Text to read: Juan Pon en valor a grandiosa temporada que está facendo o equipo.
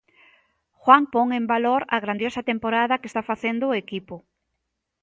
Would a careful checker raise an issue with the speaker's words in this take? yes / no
no